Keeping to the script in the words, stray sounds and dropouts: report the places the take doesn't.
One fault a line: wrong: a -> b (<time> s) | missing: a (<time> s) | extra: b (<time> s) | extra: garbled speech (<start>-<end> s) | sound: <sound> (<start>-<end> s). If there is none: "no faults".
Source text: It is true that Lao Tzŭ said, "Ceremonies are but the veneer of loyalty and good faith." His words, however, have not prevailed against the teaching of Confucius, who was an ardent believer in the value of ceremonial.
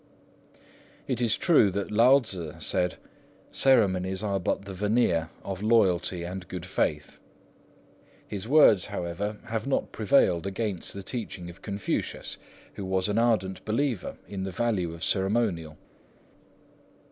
no faults